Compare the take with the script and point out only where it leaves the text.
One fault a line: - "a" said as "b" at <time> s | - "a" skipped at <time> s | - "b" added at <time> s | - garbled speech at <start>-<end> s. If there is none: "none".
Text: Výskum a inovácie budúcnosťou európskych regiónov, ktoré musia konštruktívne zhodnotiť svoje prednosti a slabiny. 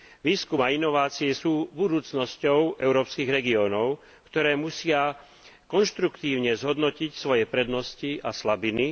- "sú" added at 1.3 s